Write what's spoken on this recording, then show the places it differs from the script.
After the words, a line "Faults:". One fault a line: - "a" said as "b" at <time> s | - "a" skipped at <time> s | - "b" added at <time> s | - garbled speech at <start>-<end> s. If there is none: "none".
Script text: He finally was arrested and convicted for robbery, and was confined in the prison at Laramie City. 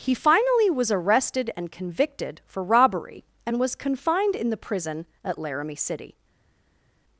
He finally was arrested and convicted for robbery, and was confined in the prison at Laramie City.
Faults:
none